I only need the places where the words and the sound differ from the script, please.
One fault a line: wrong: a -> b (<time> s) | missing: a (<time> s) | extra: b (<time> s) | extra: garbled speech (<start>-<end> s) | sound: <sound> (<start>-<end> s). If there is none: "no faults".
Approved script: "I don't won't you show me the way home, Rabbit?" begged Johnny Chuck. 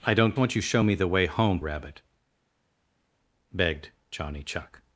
no faults